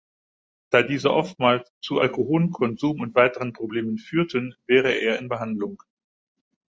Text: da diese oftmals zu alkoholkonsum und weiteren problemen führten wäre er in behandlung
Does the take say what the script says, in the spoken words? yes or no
yes